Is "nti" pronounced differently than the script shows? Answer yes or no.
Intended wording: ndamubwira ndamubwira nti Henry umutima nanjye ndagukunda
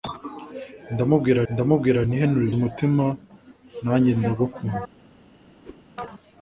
no